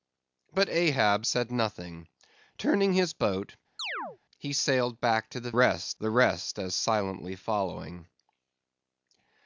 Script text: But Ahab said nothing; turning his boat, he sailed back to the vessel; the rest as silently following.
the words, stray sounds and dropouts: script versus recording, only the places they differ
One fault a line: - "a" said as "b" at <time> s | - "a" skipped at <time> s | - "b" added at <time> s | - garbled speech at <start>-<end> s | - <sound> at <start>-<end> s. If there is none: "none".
- chirp at 3.8-4.2 s
- "vessel" said as "rest" at 5.5 s